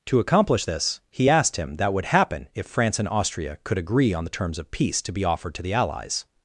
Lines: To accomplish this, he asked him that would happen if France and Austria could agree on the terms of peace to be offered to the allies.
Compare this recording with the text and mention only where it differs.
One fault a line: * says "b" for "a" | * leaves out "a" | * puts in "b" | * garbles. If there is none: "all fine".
all fine